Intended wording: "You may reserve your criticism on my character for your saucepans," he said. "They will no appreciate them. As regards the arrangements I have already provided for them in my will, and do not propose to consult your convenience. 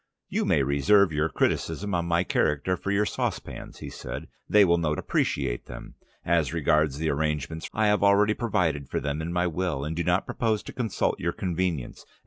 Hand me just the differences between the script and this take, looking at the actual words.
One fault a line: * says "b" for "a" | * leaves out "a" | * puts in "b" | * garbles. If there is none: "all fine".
all fine